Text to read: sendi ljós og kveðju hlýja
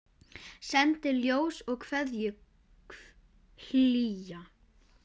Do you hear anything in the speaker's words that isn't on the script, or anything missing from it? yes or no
no